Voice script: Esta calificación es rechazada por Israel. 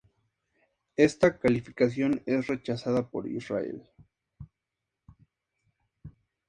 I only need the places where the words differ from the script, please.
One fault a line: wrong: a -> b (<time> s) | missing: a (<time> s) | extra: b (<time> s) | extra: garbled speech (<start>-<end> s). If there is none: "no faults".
no faults